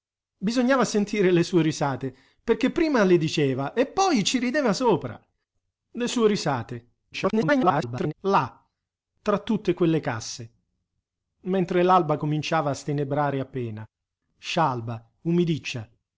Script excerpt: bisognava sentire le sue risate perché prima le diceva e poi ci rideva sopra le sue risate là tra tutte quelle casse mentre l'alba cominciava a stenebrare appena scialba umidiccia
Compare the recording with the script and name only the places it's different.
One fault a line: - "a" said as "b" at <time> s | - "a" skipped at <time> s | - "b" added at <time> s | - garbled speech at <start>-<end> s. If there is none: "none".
- garbled speech at 7.1-8.1 s